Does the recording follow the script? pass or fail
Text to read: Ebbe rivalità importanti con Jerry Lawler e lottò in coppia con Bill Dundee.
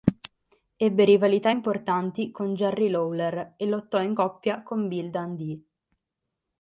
pass